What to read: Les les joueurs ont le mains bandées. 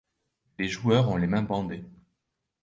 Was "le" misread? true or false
true